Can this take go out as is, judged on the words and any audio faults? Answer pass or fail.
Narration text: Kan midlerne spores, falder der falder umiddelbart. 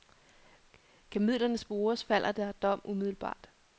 fail